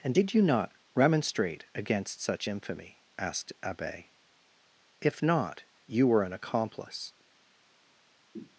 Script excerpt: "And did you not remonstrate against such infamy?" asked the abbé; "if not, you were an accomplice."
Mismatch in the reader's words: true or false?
true